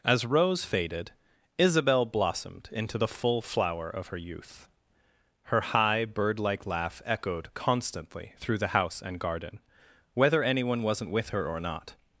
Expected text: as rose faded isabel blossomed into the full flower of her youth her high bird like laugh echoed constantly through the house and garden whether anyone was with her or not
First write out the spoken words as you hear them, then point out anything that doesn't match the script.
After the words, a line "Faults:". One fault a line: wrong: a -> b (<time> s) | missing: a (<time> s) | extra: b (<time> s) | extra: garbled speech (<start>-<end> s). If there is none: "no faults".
as rose faded isabel blossomed into the full flower of her youth her high bird like laugh echoed constantly through the house and garden whether anyone wasn't with her or not
Faults:
wrong: was -> wasn't (10.8 s)